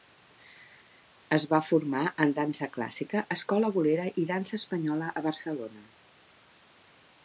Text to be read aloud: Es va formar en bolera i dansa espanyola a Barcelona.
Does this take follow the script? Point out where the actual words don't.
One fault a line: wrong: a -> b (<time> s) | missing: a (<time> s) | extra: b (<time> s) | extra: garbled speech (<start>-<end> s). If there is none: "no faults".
extra: dansa clàssica escola (2.4 s)